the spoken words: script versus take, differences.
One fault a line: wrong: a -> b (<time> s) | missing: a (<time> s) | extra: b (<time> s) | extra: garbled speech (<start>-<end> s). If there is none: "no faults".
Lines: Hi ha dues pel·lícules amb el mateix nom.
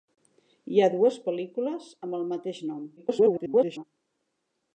extra: garbled speech (3.0-3.8 s)